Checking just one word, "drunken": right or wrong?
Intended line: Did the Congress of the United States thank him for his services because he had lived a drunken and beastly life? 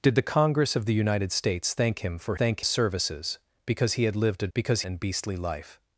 wrong